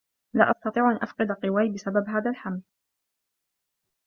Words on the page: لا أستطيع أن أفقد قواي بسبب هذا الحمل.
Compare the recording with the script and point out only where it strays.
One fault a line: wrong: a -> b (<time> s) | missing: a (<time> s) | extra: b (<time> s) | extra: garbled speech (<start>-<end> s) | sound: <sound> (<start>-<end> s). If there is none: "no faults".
no faults